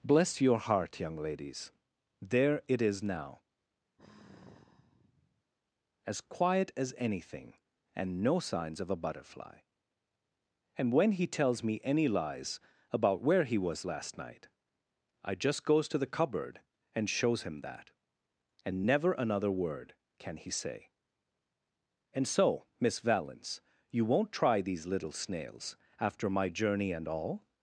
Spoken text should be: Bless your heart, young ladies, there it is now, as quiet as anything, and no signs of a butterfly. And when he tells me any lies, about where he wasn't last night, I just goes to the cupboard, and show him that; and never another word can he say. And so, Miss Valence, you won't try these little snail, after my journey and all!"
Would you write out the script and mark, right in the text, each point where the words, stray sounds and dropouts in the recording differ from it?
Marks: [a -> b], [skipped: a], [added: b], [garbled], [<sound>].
Bless your heart, young ladies, there it is now, [sigh] as quiet as anything, and no signs of a butterfly. And when he tells me any lies, about where he [wasn't -> was] last night, I just goes to the cupboard, and [show -> shows] him that; and never another word can he say. And so, Miss Valence, you won't try these little [snail, -> snails] after my journey and all!"